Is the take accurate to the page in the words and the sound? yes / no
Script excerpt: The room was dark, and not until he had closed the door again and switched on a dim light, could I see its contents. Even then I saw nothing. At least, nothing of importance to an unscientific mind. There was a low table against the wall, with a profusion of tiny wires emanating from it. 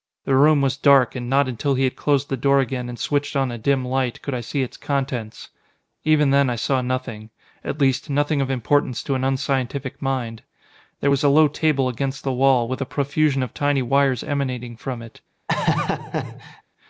no